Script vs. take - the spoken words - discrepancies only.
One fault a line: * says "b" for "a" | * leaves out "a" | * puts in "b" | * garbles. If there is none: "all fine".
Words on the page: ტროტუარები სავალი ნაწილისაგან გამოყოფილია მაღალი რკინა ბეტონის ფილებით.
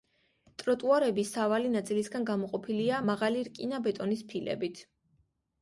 all fine